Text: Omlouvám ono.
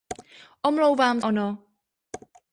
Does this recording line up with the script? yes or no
yes